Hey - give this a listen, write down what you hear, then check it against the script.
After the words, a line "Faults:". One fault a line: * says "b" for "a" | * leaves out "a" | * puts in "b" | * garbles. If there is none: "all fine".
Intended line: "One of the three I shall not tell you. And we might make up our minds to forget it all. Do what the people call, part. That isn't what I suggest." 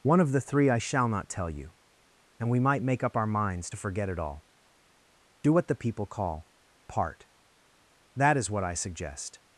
"One of the three I shall not tell you. And we might make up our minds to forget it all. Do what the people call, part. That is what I suggest."
Faults:
* says "is" for "isn't"